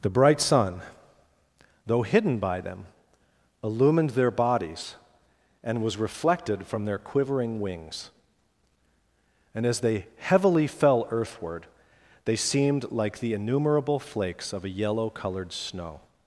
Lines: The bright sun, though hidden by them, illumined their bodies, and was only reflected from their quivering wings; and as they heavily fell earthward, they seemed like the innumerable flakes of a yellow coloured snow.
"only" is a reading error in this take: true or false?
true